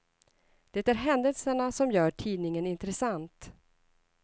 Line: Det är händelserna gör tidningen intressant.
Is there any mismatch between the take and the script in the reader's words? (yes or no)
yes